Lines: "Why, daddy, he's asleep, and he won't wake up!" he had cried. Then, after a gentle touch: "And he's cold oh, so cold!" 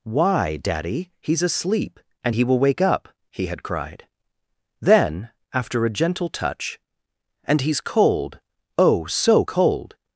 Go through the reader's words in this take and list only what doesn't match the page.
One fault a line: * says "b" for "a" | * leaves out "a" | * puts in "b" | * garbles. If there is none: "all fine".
* says "will" for "won't"